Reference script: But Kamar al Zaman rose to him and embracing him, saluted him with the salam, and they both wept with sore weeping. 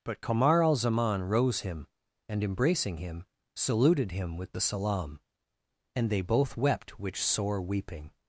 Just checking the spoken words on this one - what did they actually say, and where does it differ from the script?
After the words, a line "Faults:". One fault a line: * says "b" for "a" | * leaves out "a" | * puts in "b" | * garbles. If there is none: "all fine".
But Kamar al Zaman rose him and embracing him, saluted him with the salam, and they both wept which sore weeping.
Faults:
* leaves out "to"
* says "which" for "with"